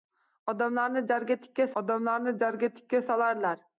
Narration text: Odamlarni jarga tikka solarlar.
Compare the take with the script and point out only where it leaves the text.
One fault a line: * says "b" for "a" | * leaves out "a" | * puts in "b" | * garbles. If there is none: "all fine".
* puts in "odamlarni jarga tikka"